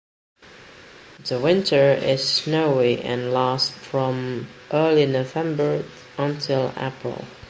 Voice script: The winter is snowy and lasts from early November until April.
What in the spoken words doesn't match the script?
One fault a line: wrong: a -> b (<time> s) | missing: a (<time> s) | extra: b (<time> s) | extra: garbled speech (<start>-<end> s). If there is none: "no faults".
no faults